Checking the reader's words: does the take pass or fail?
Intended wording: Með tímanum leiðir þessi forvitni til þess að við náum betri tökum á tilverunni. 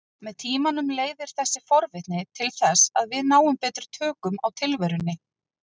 pass